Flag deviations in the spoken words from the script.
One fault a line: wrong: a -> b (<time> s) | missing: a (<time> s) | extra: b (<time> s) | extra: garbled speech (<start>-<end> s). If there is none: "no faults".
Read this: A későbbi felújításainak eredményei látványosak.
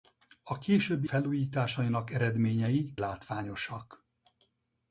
no faults